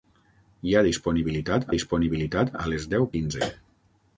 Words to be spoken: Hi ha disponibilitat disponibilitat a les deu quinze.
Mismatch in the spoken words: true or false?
false